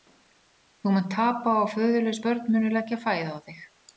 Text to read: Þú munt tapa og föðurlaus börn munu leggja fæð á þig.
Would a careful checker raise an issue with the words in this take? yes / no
no